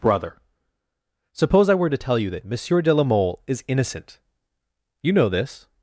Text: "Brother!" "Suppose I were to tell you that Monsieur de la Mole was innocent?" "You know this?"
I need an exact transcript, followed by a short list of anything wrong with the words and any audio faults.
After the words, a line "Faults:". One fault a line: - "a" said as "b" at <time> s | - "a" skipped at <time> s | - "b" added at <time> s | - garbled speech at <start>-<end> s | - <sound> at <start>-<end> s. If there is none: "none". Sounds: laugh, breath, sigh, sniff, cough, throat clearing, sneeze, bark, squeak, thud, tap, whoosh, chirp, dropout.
"Brother!" "Suppose I were to tell you that Monsieur de la Mole is innocent?" "You know this?"
Faults:
- "was" said as "is" at 3.5 s